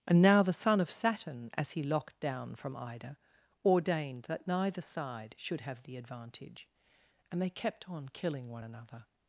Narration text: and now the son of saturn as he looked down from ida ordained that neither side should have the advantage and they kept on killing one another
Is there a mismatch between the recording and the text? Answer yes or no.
yes